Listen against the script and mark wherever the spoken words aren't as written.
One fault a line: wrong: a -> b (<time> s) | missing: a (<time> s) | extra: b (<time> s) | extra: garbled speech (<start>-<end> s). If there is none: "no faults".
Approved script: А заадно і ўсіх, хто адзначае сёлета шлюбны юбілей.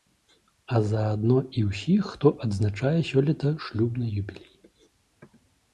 no faults